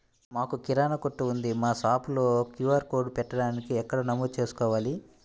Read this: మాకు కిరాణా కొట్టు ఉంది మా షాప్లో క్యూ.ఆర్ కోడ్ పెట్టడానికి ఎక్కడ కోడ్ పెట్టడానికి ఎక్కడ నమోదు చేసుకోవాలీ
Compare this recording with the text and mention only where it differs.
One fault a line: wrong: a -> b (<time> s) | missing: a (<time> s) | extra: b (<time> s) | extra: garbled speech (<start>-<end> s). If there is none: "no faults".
missing: కోడ్ పెట్టడానికి ఎక్కడ (4.0 s)